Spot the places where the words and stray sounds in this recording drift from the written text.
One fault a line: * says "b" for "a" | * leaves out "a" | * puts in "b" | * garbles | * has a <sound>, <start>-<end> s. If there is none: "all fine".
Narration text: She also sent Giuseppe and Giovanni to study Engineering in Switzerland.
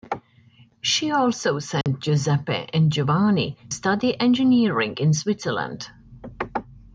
* has a dropout, 1.8-1.9 s
* leaves out "to"